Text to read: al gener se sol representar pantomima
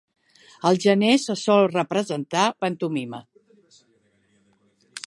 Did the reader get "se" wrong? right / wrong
right